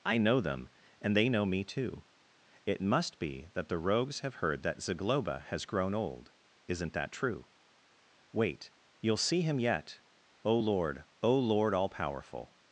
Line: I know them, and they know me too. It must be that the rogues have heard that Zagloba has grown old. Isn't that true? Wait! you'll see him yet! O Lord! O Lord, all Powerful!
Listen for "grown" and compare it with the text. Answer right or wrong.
right